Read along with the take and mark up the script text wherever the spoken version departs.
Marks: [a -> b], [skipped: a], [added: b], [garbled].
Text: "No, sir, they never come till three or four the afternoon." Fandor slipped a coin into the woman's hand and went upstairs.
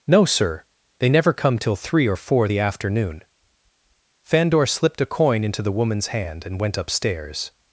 "No, sir, they never come till three or four the afternoon." Fandor slipped a coin into the woman's hand and went upstairs.